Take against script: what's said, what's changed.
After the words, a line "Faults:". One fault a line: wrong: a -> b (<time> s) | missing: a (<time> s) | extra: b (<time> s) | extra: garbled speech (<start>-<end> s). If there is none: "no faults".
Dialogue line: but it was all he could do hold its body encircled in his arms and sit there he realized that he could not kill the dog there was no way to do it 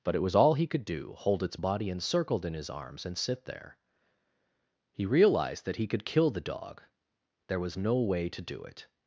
but it was all he could do hold its body encircled in his arms and sit there he realized that he could kill the dog there was no way to do it
Faults:
missing: not (6.1 s)